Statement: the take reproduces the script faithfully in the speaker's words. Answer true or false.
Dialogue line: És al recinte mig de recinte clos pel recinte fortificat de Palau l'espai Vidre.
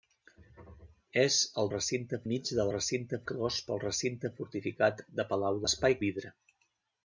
true